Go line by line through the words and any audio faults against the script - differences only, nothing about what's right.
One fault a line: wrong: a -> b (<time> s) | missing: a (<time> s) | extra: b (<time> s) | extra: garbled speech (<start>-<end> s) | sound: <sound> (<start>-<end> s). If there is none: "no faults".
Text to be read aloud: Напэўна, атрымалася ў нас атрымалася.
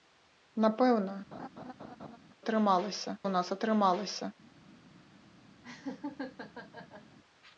sound: laugh (1.3-2.2 s)
sound: laugh (5.6-7.2 s)